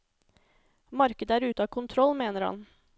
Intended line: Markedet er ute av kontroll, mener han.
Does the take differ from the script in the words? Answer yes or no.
no